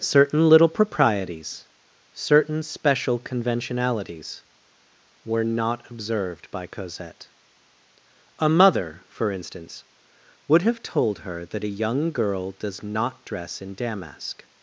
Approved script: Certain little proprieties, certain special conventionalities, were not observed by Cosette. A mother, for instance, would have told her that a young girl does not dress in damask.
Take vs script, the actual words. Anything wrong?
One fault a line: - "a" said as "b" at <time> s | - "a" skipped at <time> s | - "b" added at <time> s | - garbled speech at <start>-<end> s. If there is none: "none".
none